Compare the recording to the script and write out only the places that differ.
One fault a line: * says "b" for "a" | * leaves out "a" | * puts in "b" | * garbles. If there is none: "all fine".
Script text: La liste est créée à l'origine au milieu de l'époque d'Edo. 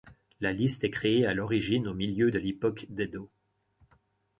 all fine